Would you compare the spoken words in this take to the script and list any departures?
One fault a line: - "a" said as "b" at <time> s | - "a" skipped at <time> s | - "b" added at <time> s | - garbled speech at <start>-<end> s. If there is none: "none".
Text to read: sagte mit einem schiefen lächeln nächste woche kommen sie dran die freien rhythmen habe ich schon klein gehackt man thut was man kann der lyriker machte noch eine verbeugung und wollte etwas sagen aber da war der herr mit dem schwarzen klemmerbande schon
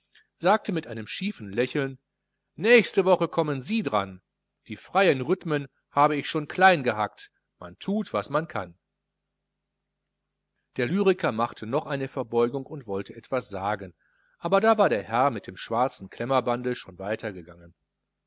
none